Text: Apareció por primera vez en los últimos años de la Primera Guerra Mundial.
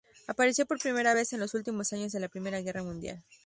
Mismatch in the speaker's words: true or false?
false